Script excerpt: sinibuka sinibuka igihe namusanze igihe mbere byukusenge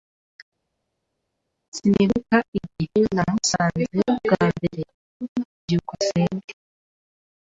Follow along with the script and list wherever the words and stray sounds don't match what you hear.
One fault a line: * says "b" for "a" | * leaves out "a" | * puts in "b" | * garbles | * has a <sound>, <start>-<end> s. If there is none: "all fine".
* leaves out "sinibuka"
* says "bwa" for "igihe"